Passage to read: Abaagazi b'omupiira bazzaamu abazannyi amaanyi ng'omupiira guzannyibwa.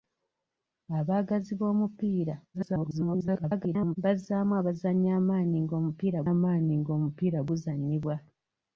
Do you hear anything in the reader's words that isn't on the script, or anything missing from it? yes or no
yes